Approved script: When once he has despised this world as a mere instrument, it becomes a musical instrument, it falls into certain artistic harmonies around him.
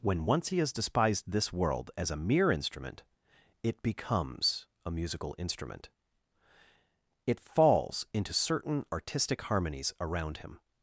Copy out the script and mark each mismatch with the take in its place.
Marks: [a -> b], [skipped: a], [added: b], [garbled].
When once he has despised this world as a mere instrument, it becomes a musical instrument, it falls into certain artistic harmonies around him.